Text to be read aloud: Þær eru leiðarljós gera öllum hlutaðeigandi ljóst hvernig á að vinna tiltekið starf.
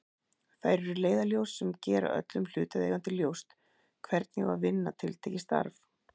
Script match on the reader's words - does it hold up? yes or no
no